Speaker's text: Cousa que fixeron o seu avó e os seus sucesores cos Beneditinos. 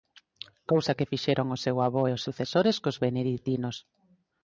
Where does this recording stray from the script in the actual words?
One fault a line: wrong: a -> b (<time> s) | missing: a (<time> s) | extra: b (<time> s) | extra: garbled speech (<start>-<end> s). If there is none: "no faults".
missing: seus (2.2 s)